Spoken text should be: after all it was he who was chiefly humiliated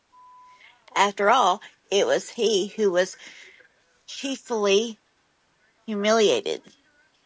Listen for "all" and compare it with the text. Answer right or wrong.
right